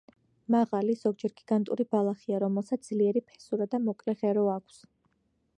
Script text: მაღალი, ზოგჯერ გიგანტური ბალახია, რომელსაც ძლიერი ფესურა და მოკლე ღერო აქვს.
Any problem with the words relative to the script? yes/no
no